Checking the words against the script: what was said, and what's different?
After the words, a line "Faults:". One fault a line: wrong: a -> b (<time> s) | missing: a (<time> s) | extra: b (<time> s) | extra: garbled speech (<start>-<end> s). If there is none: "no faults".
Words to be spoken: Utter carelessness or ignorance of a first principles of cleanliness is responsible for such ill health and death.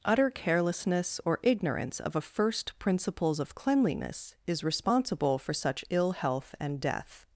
Utter carelessness or ignorance of a first principles of cleanliness is responsible for such ill health and death.
Faults:
no faults